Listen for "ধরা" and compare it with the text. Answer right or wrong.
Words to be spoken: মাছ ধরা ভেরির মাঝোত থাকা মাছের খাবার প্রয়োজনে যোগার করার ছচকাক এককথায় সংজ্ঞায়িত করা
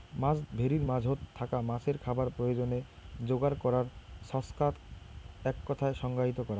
wrong